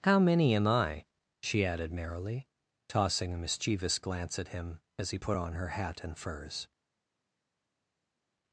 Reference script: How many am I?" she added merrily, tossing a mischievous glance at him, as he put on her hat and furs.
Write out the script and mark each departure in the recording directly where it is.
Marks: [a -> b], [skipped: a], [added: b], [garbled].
How many am I?" she added merrily, tossing a mischievous glance at him, as he put on her hat and furs.